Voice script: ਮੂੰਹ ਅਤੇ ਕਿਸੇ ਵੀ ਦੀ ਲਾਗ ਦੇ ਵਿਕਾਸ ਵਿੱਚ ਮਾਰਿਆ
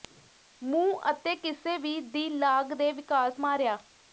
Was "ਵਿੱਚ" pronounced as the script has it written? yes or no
no